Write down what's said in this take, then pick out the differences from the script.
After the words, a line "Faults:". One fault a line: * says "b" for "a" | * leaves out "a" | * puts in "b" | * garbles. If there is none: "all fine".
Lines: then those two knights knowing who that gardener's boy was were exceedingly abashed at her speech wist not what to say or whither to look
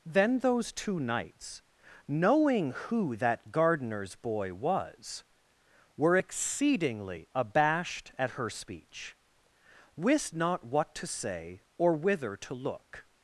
then those two knights knowing who that gardener's boy was were exceedingly abashed at her speech wist not what to say or whither to look
Faults:
all fine